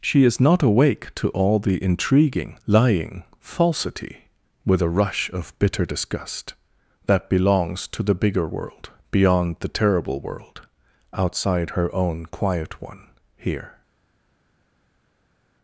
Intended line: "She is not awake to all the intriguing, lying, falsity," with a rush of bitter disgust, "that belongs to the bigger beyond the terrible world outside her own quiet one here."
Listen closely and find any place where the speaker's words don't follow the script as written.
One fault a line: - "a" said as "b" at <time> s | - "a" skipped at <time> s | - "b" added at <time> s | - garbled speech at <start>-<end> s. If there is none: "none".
- "world" added at 8.5 s